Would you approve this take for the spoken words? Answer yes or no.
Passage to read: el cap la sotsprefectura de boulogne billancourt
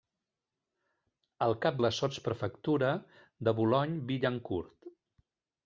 yes